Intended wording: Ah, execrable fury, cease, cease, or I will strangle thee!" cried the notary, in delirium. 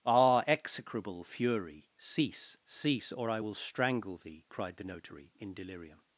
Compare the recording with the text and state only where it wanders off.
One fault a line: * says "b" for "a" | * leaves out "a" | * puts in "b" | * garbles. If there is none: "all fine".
all fine